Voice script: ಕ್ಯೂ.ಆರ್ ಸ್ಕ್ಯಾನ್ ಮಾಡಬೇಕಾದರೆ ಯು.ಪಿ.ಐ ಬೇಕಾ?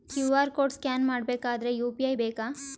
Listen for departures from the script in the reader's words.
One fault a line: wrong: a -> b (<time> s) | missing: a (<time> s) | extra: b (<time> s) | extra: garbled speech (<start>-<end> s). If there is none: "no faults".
extra: ಕೋಡ್ (0.5 s)